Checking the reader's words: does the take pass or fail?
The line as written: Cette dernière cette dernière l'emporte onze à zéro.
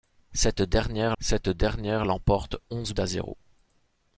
pass